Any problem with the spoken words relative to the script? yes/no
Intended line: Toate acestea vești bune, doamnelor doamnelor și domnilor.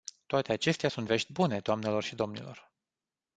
yes